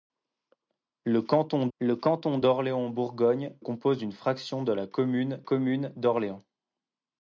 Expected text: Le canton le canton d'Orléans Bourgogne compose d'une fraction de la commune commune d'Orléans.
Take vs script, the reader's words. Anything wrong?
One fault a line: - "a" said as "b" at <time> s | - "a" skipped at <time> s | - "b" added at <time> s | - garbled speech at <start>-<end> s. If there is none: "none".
none